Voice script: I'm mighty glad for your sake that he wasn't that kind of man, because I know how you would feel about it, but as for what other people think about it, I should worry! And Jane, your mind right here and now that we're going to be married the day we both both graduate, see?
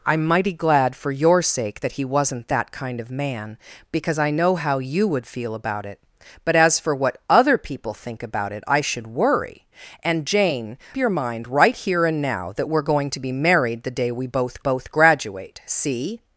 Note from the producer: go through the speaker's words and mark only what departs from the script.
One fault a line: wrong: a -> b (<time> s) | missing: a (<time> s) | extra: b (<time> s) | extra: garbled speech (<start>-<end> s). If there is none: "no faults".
no faults